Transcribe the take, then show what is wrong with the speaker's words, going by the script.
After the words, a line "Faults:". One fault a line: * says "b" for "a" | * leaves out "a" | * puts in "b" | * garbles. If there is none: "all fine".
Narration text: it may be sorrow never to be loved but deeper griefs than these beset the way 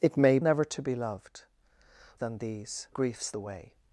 it may never to be loved than these griefs the way
Faults:
* leaves out "be sorrow"
* leaves out "but deeper griefs"
* says "griefs" for "beset"